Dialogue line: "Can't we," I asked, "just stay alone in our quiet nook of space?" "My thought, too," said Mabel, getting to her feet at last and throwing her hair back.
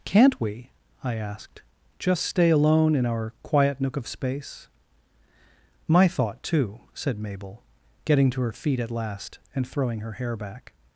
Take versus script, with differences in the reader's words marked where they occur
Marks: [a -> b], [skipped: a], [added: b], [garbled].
"Can't we," I asked, "just stay alone in our quiet nook of space?" "My thought, too," said Mabel, getting to her feet at last and throwing her hair back.